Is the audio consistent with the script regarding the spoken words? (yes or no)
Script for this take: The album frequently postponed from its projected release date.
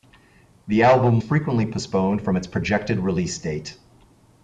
yes